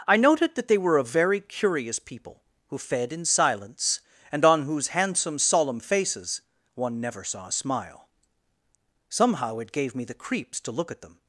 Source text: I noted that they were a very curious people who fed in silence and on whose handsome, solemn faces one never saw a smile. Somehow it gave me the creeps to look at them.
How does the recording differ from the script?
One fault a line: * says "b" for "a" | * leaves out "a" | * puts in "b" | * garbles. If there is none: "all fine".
all fine